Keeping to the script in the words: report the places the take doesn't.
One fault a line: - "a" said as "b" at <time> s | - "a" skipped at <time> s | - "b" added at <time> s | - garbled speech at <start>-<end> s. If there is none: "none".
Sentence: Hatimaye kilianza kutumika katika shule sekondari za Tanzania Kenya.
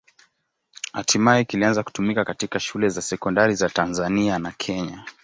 - "za" added at 2.9 s
- "na" added at 4.4 s